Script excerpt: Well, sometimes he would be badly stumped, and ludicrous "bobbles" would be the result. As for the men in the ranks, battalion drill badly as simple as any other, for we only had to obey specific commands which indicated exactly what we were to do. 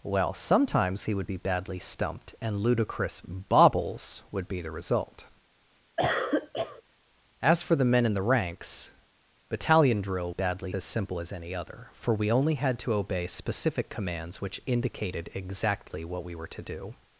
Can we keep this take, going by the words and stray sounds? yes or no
no